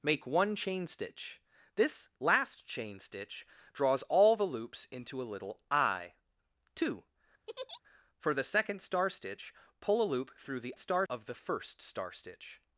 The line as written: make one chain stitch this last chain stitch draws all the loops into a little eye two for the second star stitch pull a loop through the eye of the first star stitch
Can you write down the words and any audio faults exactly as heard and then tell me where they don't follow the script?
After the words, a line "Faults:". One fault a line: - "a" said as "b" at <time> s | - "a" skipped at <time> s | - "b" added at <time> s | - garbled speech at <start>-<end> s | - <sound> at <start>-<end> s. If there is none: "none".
make one chain stitch this last chain stitch draws all the loops into a little eye two for the second star stitch pull a loop through the star of the first star stitch
Faults:
- laugh at 7.5-7.8 s
- "eye" said as "star" at 10.8 s